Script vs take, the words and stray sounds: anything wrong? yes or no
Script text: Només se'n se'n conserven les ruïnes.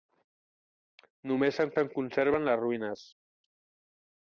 no